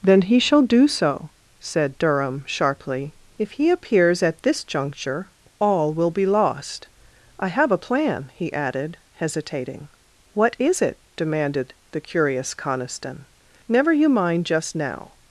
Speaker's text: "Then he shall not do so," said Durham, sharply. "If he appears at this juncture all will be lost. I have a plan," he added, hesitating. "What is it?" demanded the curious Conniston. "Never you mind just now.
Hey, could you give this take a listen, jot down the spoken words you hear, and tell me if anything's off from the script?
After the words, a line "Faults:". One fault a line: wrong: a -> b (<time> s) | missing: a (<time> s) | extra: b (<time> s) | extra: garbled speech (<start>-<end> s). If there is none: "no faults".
"Then he shall do so," said Durham, sharply. "If he appears at this juncture all will be lost. I have a plan," he added, hesitating. "What is it?" demanded the curious Conniston. "Never you mind just now.
Faults:
missing: not (0.6 s)